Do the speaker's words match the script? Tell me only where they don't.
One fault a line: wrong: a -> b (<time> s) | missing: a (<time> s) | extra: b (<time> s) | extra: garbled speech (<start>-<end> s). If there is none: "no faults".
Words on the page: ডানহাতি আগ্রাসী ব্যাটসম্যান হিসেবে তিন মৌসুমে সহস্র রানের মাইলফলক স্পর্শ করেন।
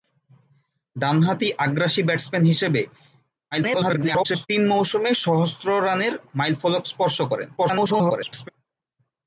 extra: garbled speech (3.5-4.5 s)
extra: garbled speech (7.6-8.5 s)